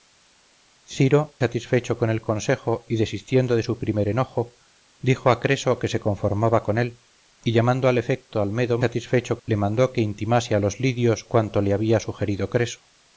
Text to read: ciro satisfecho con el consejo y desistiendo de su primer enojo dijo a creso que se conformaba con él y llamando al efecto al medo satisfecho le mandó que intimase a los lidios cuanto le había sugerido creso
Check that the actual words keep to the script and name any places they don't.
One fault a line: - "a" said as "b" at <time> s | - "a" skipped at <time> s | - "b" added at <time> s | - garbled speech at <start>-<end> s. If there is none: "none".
none